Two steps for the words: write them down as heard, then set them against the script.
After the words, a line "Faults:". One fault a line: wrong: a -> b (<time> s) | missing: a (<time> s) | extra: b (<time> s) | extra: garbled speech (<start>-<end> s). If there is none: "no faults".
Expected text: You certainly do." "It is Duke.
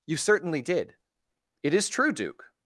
You certainly did." "It is true, Duke.
Faults:
wrong: do -> did (0.6 s)
extra: true (1.9 s)